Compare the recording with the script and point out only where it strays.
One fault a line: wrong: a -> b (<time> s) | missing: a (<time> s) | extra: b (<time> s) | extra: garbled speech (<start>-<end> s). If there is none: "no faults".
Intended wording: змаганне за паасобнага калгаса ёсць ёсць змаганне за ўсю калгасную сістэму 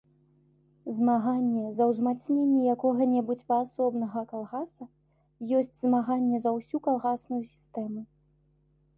extra: ўзмацненне якога небудзь (1.9 s)
missing: ёсць (5.8 s)